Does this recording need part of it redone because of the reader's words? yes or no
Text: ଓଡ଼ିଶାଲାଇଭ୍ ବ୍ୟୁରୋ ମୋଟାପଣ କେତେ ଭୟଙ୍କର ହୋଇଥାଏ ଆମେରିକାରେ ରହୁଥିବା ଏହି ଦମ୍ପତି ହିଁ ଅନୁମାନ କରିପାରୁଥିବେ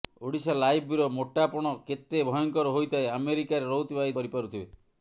yes